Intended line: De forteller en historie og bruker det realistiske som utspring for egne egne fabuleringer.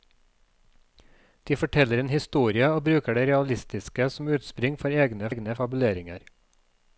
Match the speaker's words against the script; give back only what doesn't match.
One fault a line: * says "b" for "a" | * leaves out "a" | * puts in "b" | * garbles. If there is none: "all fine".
all fine